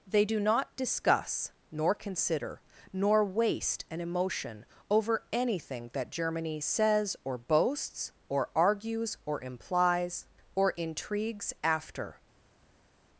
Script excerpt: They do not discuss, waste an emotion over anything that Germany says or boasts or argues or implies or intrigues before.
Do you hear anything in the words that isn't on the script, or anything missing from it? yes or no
yes